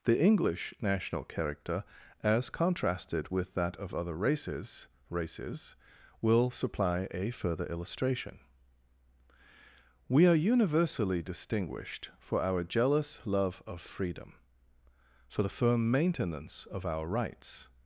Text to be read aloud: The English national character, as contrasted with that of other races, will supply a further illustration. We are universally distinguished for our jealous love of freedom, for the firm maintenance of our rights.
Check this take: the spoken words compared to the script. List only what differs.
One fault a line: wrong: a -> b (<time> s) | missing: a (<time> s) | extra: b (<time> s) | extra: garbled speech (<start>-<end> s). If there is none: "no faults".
extra: races (5.1 s)